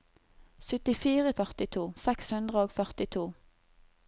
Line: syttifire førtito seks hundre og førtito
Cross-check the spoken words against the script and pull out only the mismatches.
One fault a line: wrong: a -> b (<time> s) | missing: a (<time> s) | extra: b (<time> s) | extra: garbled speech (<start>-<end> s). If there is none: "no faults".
no faults